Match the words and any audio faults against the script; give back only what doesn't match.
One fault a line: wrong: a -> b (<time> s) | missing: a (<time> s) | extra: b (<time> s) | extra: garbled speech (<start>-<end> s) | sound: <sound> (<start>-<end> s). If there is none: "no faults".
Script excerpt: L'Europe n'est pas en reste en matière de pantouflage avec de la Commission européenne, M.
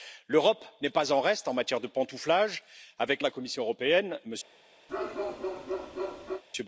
sound: bark (4.9-6.4 s)